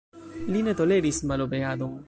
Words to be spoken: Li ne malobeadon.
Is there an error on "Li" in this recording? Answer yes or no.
no